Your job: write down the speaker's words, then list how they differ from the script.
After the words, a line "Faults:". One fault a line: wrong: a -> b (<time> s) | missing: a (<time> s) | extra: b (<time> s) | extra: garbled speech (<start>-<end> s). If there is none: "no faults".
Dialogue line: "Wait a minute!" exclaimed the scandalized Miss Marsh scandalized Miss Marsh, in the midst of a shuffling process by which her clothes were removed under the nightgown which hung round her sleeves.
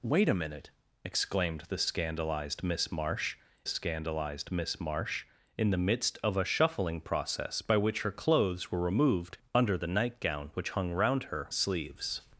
"Wait a minute!" exclaimed the scandalized Miss Marsh scandalized Miss Marsh, in the midst of a shuffling process by which her clothes were removed under the nightgown which hung round her sleeves.
Faults:
no faults